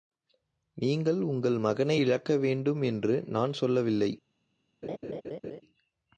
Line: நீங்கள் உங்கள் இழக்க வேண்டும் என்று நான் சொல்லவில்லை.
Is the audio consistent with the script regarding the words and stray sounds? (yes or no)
no